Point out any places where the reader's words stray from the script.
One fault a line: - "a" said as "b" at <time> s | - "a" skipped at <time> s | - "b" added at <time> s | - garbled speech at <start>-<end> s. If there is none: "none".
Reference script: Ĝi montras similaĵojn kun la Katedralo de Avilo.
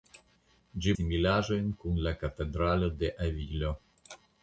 - "montras" skipped at 0.9 s